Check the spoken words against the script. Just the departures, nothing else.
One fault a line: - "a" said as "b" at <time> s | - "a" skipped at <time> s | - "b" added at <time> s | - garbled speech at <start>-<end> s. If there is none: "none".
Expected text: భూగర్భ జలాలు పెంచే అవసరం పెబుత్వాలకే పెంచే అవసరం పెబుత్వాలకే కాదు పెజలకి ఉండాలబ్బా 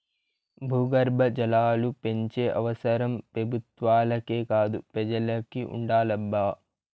- "పెంచే అవసరం పెబుత్వాలకే" skipped at 4.4 s